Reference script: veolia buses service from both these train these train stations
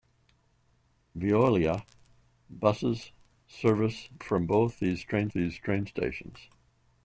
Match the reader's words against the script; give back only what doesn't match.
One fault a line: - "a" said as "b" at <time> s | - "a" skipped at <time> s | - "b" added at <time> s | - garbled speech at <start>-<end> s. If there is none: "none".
none